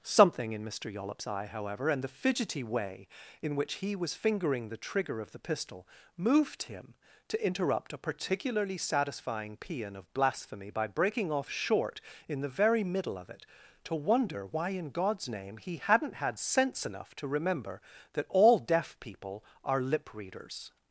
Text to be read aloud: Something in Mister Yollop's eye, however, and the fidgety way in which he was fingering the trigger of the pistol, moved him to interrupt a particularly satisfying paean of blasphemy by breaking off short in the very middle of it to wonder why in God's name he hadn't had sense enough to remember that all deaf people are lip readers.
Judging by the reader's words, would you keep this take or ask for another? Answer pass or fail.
pass